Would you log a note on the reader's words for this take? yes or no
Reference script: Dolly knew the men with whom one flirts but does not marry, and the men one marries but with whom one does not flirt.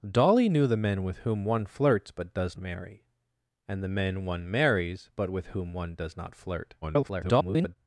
yes